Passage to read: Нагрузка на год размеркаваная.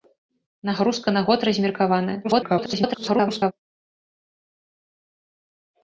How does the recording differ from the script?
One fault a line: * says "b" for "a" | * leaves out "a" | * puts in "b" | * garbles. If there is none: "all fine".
* garbles